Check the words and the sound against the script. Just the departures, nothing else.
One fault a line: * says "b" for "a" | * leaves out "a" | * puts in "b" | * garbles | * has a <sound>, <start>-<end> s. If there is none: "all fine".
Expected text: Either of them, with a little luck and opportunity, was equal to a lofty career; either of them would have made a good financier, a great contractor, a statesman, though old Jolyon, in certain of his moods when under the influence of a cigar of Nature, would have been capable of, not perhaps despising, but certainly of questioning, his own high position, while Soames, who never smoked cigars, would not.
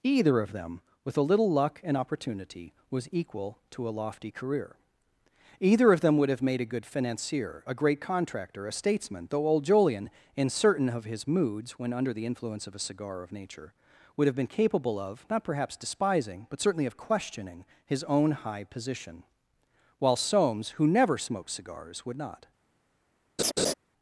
* has a laugh, 23.4-23.7 s